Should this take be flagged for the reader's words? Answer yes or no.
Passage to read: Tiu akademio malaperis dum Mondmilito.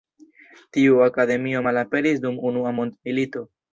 yes